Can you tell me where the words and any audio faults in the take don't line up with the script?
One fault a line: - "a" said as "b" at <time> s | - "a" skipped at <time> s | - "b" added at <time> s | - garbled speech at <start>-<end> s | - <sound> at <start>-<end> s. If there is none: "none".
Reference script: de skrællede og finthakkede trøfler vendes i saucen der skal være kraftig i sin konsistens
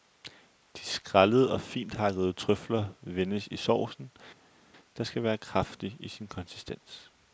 none